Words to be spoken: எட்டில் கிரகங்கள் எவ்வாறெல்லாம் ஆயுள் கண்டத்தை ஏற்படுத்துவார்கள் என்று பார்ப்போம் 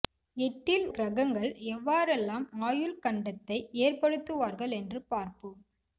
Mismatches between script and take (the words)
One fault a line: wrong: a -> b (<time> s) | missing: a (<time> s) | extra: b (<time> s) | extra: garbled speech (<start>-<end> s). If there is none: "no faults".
no faults